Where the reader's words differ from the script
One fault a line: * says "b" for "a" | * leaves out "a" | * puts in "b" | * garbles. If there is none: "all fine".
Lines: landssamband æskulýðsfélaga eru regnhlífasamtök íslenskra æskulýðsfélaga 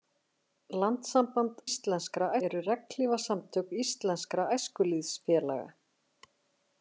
* says "íslenskra" for "æskulýðsfélaga"